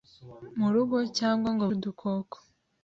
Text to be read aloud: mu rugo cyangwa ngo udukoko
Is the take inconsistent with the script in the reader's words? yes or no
no